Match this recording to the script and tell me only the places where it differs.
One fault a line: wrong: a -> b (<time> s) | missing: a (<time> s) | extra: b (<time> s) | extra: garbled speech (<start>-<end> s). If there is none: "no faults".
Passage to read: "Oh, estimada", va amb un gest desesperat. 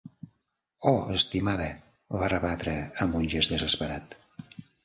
extra: rebatre (2.3 s)